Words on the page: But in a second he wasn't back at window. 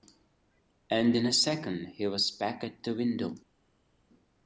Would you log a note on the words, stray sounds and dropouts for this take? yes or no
yes